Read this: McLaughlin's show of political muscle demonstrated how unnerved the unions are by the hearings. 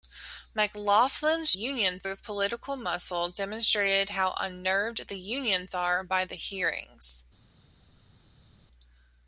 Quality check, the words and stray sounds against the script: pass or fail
fail